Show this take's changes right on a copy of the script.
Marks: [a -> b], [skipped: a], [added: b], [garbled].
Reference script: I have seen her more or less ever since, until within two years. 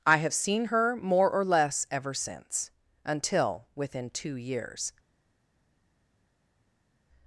I have seen her more or less ever since, until within two years.